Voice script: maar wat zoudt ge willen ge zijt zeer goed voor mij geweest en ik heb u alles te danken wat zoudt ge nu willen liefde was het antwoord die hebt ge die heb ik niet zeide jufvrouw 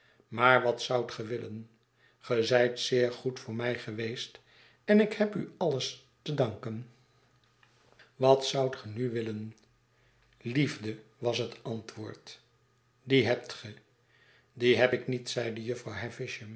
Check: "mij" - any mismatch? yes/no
no